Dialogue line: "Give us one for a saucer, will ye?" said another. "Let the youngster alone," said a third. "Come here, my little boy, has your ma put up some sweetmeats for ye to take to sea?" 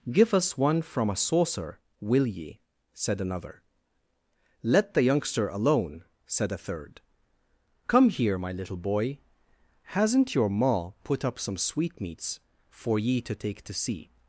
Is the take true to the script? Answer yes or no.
no